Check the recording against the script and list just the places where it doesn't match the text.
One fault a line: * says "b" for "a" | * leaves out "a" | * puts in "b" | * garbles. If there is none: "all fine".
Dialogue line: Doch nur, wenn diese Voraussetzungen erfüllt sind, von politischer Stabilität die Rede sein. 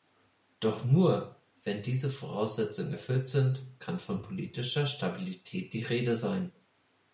* puts in "kann"